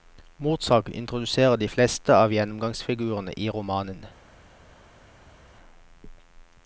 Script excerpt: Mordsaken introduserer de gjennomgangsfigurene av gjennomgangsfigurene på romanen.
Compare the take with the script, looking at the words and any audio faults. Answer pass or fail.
fail